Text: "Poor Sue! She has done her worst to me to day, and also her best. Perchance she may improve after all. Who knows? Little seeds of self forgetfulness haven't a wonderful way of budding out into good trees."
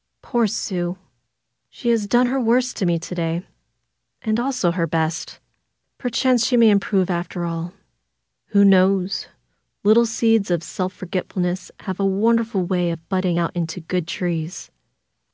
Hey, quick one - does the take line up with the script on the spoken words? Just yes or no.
no